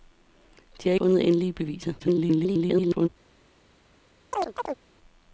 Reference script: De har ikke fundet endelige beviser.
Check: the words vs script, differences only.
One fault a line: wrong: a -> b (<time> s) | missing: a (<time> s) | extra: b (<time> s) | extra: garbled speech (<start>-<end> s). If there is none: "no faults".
missing: ikke (0.9 s)
extra: garbled speech (2.0-3.1 s)